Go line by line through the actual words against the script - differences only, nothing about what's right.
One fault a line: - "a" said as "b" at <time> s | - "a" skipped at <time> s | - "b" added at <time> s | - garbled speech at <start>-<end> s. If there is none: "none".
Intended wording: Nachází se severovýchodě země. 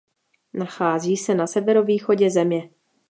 - "na" added at 1.4 s